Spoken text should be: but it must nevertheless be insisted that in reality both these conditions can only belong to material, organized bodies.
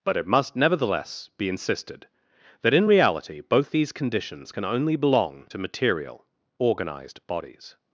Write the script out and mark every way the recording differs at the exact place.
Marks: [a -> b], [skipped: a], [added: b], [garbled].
but it must nevertheless be insisted that in reality both these conditions can only belong to material, organized bodies.